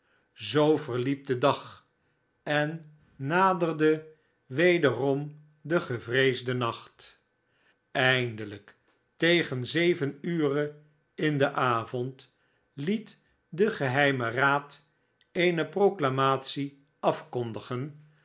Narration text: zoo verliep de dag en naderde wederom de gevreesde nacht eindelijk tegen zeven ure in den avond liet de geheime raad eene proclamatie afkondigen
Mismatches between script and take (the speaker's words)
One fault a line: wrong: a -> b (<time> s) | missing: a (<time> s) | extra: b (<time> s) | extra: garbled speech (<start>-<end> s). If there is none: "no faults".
no faults